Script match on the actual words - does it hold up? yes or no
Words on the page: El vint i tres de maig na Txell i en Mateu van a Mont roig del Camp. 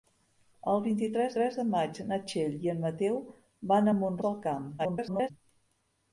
no